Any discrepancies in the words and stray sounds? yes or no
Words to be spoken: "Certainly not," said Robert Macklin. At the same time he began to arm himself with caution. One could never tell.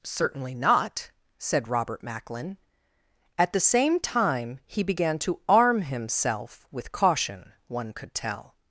yes